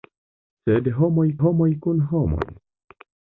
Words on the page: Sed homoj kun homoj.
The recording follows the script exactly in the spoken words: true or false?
false